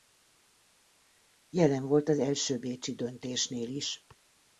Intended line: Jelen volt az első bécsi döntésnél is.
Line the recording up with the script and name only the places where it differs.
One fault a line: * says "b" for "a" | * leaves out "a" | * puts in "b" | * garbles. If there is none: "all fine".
all fine